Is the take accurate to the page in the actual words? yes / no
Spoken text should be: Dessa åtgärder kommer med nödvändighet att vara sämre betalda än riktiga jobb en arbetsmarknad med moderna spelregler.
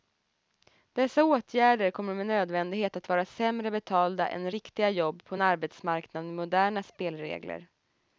no